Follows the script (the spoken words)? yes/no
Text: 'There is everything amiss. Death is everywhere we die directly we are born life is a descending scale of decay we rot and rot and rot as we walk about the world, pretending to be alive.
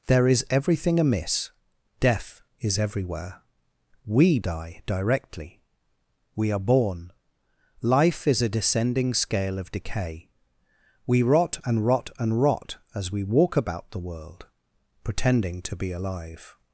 yes